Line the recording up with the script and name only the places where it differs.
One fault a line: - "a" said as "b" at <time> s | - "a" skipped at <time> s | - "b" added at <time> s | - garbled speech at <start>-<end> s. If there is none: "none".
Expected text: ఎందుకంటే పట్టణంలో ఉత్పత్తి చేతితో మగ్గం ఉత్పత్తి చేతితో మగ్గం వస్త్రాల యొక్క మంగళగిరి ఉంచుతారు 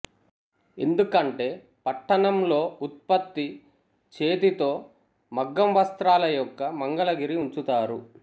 - "ఉత్పత్తి చేతితో మగ్గం" skipped at 5.7 s